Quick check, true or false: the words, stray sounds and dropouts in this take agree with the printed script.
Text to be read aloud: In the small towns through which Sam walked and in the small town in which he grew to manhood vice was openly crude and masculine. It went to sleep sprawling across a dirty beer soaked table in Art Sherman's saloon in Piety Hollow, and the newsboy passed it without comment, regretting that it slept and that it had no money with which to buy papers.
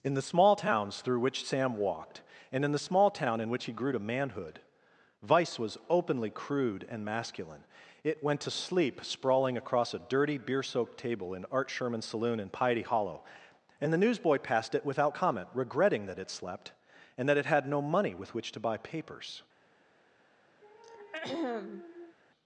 false